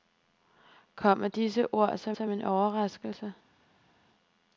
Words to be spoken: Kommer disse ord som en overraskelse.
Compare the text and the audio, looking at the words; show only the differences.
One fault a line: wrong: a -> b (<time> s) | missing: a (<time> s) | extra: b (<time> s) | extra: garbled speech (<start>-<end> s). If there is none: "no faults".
extra: som (2.1 s)